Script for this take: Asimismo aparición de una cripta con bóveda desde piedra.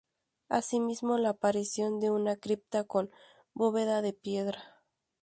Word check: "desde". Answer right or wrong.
wrong